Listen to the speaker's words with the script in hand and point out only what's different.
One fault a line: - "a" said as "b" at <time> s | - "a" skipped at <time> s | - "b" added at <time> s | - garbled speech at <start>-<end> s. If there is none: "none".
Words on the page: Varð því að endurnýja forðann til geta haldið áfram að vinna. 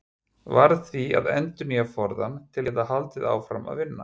none